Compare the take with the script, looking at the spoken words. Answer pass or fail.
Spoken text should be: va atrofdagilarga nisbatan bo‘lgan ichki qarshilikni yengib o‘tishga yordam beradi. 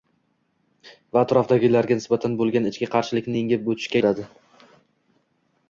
fail